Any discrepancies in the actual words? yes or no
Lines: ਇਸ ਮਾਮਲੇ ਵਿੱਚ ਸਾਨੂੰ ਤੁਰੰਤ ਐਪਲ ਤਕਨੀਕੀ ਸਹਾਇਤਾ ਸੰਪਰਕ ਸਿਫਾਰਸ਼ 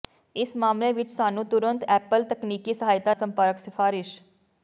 no